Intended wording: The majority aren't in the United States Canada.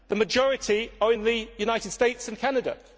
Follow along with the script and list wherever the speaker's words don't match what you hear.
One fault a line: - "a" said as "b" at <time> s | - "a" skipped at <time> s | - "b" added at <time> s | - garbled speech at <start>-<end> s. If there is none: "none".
- "aren't" said as "are" at 1.0 s
- "and" added at 2.3 s